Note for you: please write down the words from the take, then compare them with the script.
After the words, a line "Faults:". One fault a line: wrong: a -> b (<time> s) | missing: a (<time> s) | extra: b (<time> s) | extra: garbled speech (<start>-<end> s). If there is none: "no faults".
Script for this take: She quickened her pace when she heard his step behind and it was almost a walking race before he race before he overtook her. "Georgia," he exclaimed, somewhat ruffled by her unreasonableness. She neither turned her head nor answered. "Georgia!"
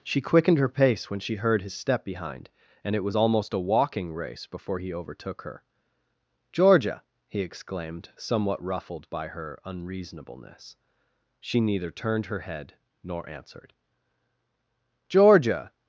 She quickened her pace when she heard his step behind and it was almost a walking race before he overtook her. "Georgia," he exclaimed, somewhat ruffled by her unreasonableness. She neither turned her head nor answered. "Georgia!"
Faults:
missing: race before he (4.9 s)